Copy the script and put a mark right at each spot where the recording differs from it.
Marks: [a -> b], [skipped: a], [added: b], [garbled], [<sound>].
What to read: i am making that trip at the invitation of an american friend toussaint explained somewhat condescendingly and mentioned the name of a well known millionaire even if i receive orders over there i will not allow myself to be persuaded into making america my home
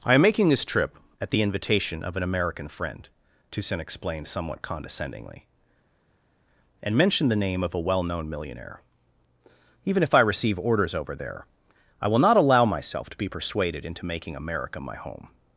i am making [that -> this] trip at the invitation of an american friend toussaint explained somewhat condescendingly and mentioned the name of a well known millionaire even if i receive orders over there i will not allow myself to be persuaded into making america my home